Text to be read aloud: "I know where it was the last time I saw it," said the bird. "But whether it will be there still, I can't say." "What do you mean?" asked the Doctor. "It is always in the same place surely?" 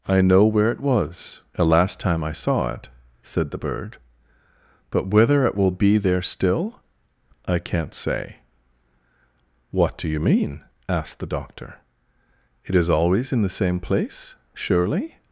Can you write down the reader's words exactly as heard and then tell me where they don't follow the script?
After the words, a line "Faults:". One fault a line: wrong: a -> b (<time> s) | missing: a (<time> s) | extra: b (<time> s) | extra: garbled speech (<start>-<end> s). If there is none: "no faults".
"I know where it was the last time I saw it," said the bird. "But whether it will be there still, I can't say." "What do you mean?" asked the Doctor. "It is always in the same place surely?"
Faults:
no faults